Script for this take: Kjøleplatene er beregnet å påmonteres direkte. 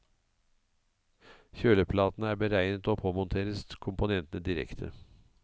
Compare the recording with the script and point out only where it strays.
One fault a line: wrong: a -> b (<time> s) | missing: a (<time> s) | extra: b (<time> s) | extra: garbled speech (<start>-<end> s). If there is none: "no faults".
extra: komponentene (3.9 s)